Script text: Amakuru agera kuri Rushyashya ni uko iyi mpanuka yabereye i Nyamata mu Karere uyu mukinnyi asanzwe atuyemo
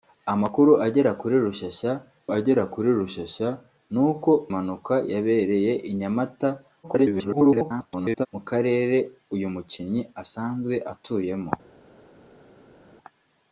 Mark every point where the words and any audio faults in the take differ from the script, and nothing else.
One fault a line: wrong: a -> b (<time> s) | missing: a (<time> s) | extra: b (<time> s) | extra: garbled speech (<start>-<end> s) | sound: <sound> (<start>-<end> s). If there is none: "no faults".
extra: agera kuri Rushyashya (2.4 s)
missing: iyi (4.3 s)
extra: garbled speech (6.8-8.3 s)